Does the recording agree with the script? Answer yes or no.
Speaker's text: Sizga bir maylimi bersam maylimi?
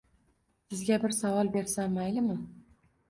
no